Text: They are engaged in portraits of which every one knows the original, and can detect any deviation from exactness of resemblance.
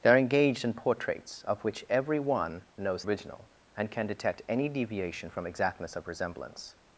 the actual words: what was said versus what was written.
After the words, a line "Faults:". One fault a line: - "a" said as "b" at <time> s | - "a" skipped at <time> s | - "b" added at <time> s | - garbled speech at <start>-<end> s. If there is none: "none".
They are engaged in portraits of which every one knows original, and can detect any deviation from exactness of resemblance.
Faults:
- "the" skipped at 3.0 s